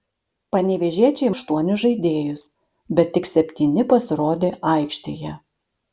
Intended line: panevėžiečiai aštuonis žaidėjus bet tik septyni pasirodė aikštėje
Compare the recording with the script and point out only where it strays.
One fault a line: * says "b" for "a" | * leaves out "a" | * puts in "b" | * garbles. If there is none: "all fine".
all fine